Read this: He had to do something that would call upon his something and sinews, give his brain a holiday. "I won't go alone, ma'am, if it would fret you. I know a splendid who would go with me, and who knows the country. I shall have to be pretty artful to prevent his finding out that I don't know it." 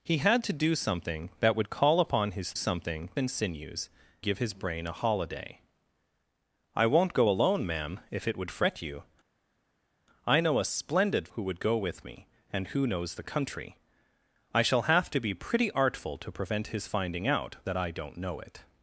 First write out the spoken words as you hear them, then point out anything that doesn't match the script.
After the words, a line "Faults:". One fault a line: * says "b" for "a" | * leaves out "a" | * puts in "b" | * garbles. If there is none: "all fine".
He had to do something that would call upon his something and sinews, give his brain a holiday. "I won't go alone, ma'am, if it would fret you. I know a splendid who would go with me, and who knows the country. I shall have to be pretty artful to prevent his finding out that I don't know it."
Faults:
all fine